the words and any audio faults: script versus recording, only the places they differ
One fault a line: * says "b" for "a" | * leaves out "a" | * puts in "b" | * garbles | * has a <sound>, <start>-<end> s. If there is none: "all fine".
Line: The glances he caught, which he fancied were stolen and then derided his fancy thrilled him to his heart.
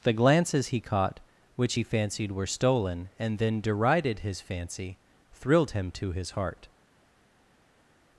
all fine